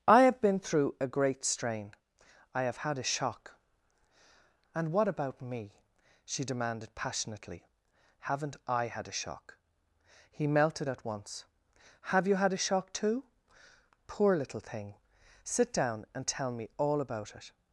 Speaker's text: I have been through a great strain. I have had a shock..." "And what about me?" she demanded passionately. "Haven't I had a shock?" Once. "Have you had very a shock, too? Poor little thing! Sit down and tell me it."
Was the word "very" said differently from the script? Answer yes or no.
yes